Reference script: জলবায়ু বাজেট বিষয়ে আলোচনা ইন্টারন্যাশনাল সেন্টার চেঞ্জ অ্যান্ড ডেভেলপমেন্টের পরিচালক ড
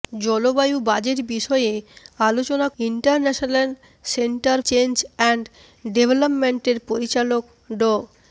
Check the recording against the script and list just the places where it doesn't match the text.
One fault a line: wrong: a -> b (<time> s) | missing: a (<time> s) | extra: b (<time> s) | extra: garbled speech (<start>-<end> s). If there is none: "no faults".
no faults